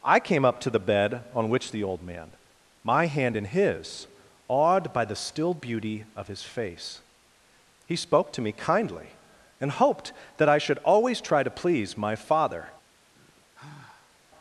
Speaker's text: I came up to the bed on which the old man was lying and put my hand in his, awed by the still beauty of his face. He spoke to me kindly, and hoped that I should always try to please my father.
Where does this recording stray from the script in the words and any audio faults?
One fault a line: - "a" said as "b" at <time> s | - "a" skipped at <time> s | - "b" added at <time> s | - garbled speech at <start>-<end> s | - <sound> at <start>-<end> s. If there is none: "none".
- "was lying and put" skipped at 2.4 s
- sigh at 13.1-14.2 s